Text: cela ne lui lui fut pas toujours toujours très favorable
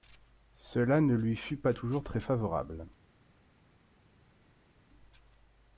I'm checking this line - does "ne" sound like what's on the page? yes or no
yes